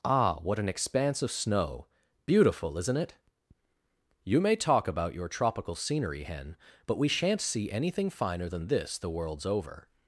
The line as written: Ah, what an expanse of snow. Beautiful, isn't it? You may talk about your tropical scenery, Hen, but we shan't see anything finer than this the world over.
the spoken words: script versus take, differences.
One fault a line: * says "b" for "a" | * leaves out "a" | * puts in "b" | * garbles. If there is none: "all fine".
* says "worlds" for "world"